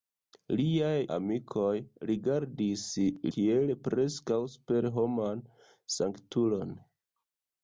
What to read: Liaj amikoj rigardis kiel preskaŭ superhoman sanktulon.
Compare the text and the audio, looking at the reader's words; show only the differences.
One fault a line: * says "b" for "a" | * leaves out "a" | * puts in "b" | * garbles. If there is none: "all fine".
all fine